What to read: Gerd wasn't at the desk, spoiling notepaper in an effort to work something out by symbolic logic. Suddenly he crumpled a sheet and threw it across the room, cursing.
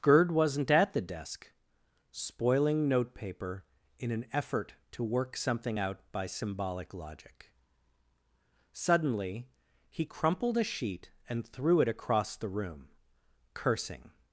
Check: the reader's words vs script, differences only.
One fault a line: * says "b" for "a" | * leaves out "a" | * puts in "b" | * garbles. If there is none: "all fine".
all fine